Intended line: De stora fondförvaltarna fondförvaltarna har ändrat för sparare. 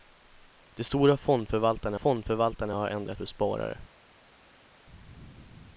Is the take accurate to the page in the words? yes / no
yes